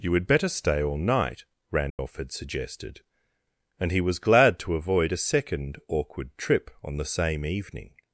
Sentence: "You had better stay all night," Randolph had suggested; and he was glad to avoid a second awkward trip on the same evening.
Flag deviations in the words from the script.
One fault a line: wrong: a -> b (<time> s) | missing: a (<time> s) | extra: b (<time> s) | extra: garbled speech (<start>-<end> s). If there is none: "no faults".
no faults